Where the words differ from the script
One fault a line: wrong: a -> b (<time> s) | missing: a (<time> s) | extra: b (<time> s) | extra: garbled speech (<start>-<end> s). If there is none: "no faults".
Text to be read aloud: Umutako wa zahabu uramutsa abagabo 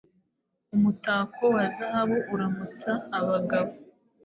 no faults